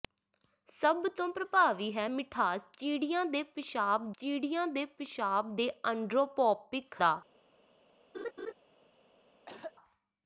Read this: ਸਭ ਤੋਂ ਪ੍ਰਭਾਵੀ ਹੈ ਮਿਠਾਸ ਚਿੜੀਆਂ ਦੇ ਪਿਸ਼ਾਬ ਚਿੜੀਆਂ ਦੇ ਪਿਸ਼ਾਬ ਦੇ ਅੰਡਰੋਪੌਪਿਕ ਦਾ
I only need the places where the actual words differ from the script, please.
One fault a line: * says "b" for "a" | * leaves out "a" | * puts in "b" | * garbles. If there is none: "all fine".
all fine